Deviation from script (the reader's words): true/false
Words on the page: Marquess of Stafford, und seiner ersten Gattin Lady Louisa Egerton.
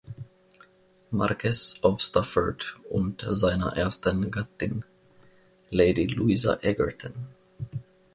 false